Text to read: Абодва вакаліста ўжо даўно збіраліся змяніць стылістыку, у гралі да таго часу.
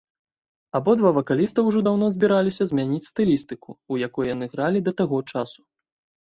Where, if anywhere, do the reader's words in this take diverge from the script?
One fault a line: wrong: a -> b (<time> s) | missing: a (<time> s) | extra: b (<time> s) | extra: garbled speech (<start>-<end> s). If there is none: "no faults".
extra: якой яны (4.1 s)